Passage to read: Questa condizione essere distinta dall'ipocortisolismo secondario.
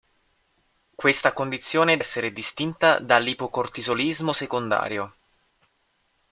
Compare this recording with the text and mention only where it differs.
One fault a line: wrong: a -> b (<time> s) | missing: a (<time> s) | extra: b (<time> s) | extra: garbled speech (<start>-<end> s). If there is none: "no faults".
no faults